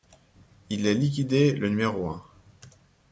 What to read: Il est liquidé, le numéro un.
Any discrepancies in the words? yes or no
no